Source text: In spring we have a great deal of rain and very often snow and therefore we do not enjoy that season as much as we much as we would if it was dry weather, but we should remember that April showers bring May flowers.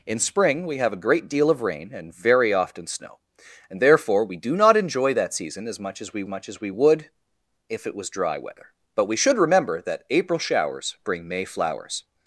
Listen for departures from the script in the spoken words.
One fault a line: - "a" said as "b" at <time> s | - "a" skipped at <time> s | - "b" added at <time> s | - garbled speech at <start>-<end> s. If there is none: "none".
none